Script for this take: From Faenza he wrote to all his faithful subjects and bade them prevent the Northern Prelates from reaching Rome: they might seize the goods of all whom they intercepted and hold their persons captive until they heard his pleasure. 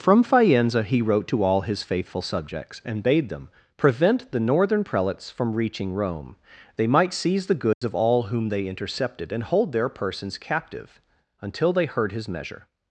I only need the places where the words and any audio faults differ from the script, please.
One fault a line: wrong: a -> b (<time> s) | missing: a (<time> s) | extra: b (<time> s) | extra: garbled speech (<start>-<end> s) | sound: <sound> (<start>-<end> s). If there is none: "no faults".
sound: dropout (7.7-7.8 s)
wrong: pleasure -> measure (12.3 s)